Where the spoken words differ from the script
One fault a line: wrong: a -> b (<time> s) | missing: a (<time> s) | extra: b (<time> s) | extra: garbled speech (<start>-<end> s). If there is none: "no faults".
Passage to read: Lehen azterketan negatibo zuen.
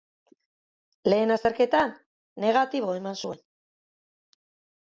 extra: eman (3.0 s)